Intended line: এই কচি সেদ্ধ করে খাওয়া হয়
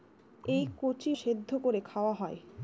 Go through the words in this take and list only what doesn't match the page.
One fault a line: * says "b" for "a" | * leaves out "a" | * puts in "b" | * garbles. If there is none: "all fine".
all fine